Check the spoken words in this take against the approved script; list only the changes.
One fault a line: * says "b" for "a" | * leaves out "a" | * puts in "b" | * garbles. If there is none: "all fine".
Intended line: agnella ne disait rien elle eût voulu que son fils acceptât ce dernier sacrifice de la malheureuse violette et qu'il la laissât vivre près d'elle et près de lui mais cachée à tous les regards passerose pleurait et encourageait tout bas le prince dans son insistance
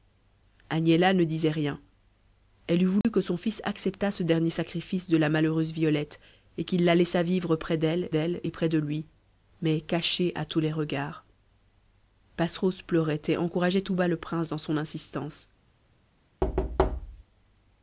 * puts in "d'elle"